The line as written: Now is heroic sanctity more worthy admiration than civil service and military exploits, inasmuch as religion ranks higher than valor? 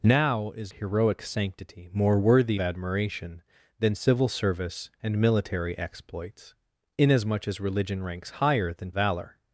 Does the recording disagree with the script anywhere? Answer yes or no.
no